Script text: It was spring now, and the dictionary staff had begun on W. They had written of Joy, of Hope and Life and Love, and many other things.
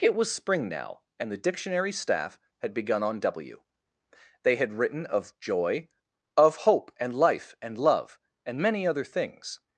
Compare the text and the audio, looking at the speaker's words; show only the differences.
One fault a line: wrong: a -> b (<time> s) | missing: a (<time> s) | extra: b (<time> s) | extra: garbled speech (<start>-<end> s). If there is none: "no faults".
no faults